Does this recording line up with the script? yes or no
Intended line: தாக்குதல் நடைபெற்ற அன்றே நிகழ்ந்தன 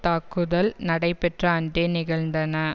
yes